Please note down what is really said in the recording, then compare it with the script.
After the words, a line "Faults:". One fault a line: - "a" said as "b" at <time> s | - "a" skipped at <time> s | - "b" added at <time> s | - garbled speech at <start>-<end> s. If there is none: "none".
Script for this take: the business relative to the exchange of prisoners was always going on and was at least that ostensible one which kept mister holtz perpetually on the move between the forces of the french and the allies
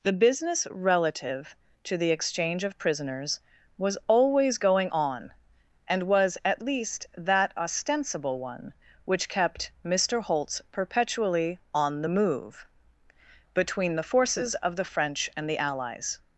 the business relative to the exchange of prisoners was always going on and was at least that ostensible one which kept mister holtz perpetually on the move between the forces of the french and the allies
Faults:
none